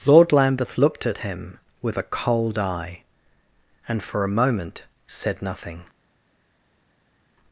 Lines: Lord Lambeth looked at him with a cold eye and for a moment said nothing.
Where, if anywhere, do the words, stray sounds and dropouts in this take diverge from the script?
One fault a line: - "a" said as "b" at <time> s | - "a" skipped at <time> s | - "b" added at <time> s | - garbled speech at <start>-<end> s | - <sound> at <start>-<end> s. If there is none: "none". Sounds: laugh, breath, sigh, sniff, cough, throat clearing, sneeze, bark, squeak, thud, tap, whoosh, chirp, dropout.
none